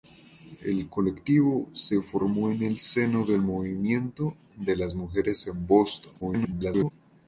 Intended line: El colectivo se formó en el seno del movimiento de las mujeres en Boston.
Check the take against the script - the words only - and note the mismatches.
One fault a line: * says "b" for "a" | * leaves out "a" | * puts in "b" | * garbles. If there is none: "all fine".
* garbles